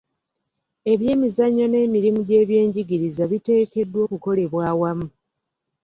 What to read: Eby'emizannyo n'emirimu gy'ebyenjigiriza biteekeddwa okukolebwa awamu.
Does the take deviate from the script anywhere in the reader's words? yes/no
no